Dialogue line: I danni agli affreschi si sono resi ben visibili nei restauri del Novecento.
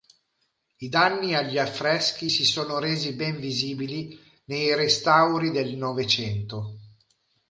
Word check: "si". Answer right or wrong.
right